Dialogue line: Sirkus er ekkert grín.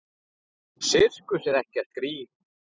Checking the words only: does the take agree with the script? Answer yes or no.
yes